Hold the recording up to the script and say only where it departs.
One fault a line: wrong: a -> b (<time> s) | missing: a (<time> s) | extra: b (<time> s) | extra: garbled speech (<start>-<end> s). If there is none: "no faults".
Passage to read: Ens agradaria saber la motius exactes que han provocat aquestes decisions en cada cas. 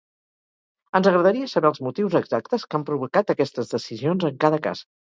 wrong: la -> els (1.7 s)